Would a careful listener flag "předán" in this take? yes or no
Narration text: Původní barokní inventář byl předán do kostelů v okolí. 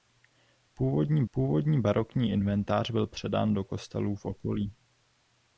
no